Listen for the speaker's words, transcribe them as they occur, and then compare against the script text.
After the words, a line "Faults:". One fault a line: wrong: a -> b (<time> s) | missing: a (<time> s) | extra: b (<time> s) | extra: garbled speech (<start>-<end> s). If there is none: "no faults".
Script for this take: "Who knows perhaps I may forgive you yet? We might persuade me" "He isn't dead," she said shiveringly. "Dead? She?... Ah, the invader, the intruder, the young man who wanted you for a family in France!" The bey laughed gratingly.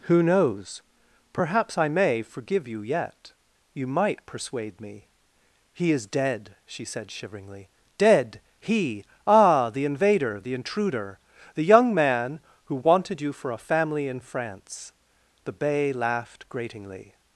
"Who knows perhaps I may forgive you yet? You might persuade me" "He is dead," she said shiveringly. "Dead? He?... Ah, the invader, the intruder, the young man who wanted you for a family in France!" The bey laughed gratingly.
Faults:
wrong: We -> You (3.7 s)
wrong: isn't -> is (5.9 s)
wrong: She -> He (8.6 s)